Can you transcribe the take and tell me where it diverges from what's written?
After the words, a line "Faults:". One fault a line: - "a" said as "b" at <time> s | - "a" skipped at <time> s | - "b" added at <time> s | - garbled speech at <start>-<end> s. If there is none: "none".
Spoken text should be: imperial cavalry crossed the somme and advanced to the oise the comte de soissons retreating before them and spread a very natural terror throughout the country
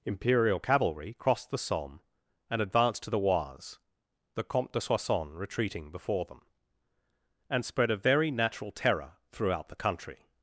imperial cavalry crossed the somme and advanced to the oise the comte de soissons retreating before them and spread a very natural terror throughout the country
Faults:
none